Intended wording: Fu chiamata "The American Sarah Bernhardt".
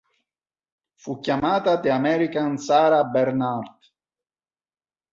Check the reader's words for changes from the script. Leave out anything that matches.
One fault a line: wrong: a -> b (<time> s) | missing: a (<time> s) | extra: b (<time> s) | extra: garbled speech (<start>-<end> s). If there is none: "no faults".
no faults